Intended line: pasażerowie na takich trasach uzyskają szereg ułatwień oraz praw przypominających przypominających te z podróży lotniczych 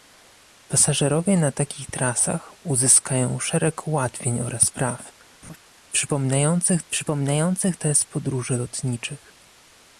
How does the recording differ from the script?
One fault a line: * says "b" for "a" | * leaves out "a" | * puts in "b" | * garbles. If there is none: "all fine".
all fine